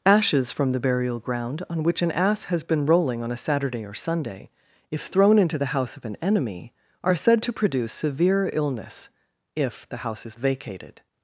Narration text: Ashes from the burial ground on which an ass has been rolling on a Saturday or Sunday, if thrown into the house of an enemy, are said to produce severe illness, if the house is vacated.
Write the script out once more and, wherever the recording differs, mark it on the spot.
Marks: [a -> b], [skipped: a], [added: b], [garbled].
Ashes from the burial ground on which an ass has been rolling on a Saturday or Sunday, if thrown into the house of an enemy, are said to produce severe illness, if the house is vacated.